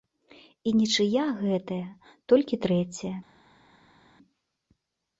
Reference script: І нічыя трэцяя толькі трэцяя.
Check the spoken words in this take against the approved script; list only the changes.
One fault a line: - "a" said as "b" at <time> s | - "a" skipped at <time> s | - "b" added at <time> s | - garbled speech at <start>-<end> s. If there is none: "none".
- "трэцяя" said as "гэтая" at 1.4 s